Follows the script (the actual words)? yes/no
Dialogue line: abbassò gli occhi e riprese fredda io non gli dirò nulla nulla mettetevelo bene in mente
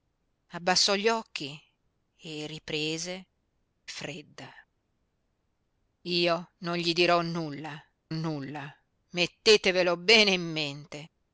yes